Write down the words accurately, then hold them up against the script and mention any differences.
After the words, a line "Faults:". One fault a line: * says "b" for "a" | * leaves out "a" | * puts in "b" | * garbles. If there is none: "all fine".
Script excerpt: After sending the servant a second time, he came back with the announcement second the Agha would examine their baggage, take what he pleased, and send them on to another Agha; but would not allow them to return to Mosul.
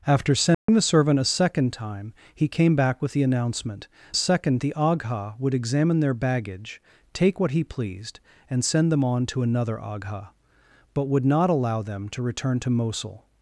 After sending the servant a second time, he came back with the announcement second the Agha would examine their baggage, take what he pleased, and send them on to another Agha; but would not allow them to return to Mosul.
Faults:
all fine